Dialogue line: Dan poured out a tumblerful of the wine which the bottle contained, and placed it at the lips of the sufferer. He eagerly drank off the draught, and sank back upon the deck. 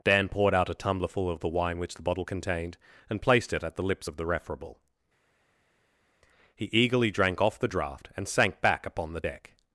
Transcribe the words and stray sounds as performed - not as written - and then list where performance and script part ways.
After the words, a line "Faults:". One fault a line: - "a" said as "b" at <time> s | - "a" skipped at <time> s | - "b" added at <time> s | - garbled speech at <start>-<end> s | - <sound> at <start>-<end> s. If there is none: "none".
Dan poured out a tumblerful of the wine which the bottle contained, and placed it at the lips of the referable. He eagerly drank off the draught, and sank back upon the deck.
Faults:
- "sufferer" said as "referable" at 4.3 s